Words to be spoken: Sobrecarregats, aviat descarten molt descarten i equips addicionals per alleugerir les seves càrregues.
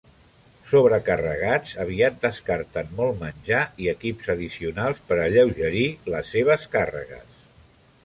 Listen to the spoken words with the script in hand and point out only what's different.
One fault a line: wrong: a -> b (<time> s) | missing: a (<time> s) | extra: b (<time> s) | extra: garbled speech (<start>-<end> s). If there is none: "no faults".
wrong: descarten -> menjar (3.3 s)